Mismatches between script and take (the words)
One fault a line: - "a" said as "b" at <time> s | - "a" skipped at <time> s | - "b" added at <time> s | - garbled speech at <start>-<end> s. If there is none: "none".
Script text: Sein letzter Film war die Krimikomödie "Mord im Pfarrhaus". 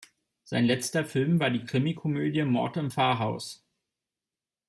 none